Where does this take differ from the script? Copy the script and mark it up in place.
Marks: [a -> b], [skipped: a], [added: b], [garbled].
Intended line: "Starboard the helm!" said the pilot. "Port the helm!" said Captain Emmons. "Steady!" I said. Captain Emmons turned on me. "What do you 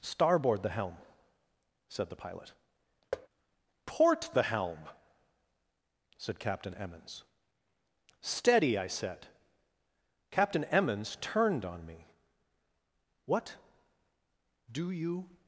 "Starboard the helm!" said the pilot. "Port the helm!" said Captain Emmons. "Steady!" I said. Captain Emmons turned on me. "What do you